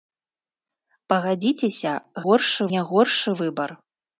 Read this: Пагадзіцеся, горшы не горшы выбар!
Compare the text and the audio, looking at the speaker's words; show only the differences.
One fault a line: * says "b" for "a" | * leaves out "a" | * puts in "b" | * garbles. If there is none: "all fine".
all fine